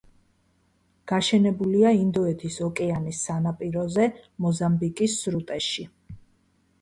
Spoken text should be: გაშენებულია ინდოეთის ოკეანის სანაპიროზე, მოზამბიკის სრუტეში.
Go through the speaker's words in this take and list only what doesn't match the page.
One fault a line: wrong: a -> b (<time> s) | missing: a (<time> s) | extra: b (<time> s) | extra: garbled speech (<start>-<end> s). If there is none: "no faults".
no faults